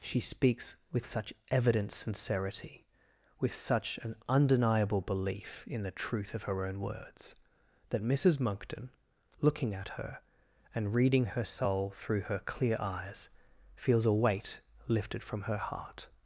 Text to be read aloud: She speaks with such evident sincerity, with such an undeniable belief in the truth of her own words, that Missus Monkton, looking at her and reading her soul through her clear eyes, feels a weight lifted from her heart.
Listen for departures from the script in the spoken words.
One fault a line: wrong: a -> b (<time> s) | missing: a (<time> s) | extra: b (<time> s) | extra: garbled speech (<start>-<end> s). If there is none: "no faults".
no faults